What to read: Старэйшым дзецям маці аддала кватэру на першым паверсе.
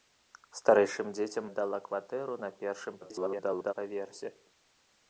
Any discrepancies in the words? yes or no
yes